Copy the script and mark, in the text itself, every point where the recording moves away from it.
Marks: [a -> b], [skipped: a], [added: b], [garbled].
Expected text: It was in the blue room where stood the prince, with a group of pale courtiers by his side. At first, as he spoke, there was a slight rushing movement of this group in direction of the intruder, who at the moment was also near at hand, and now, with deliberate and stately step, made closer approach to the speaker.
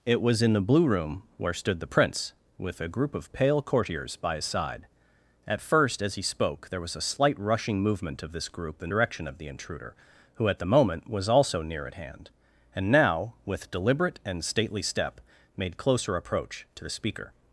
It was in the blue room where stood the prince, with a group of pale courtiers by his side. At first, as he spoke, there was a slight rushing movement of this group in direction of the intruder, who at the moment was also near at hand, and now, with deliberate and stately step, made closer approach to the speaker.